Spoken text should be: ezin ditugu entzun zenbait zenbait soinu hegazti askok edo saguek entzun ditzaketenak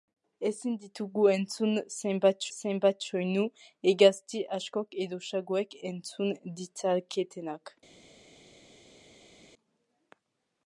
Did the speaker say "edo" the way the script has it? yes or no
yes